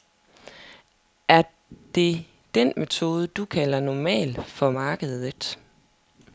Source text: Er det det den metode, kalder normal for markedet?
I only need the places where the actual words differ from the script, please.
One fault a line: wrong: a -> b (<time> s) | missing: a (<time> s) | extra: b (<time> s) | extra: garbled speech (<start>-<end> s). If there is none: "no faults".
missing: det (2.2 s)
extra: du (3.3 s)